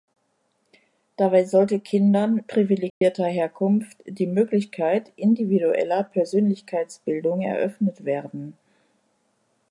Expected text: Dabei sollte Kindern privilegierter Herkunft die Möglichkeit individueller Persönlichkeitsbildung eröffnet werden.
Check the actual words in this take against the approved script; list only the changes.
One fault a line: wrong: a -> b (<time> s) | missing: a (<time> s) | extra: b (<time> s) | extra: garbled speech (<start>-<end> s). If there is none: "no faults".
no faults